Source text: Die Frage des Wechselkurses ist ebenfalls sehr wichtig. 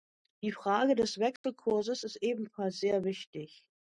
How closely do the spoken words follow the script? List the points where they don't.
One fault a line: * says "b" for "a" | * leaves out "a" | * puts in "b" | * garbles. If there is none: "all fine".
all fine